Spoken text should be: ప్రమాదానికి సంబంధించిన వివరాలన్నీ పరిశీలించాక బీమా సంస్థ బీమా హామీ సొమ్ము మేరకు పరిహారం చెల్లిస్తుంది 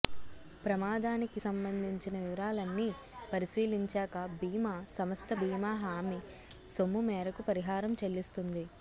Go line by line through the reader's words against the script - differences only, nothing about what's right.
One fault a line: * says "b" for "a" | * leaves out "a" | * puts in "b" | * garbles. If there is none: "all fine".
all fine